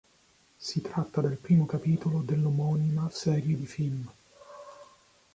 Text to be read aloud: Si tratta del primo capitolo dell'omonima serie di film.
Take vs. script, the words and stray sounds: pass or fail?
pass